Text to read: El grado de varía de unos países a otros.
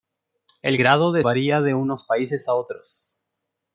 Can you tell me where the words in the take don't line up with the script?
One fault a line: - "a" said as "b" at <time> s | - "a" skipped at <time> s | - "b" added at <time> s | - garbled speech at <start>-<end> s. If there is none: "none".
none